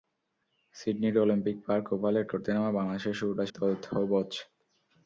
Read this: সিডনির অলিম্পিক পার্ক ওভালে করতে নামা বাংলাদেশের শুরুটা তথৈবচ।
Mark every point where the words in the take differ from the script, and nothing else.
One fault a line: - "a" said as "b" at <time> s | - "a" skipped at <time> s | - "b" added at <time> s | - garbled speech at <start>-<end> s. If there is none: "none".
none